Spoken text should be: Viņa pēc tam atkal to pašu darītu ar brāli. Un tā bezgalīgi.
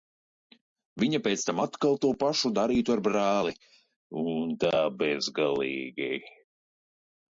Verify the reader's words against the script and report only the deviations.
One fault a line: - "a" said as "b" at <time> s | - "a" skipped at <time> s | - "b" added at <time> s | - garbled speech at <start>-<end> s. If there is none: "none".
none